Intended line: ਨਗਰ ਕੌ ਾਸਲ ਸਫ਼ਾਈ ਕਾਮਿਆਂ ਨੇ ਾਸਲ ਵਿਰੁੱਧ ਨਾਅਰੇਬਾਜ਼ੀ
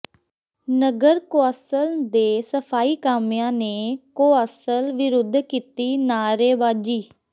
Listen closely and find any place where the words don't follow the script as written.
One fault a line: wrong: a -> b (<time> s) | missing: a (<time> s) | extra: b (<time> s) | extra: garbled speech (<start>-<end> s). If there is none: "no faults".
extra: ਦੇ (2.1 s)
extra: ਕੌ (4.2 s)
extra: ਕੀਤੀ (5.4 s)